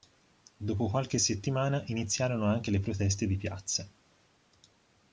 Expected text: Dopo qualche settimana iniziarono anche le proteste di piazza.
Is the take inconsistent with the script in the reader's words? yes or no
no